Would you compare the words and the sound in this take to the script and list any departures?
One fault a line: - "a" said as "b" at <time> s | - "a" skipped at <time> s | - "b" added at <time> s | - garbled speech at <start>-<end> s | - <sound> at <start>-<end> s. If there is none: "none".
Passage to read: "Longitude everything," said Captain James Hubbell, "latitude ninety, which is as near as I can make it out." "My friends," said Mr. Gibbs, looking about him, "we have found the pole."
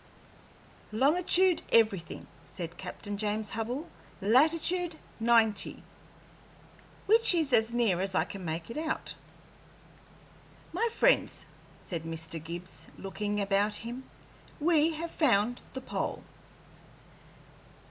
none